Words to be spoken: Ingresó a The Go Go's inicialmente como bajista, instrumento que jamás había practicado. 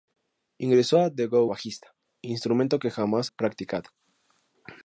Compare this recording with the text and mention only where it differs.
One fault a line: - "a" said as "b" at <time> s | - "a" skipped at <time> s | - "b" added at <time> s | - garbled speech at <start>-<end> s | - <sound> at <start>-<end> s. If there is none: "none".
- "Go's inicialmente como" skipped at 1.4 s
- "había" skipped at 3.3 s